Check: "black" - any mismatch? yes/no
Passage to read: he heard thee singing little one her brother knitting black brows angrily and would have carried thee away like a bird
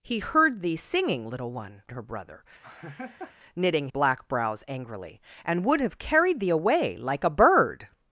no